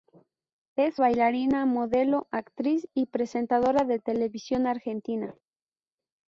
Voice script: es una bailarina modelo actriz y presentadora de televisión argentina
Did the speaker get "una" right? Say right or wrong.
wrong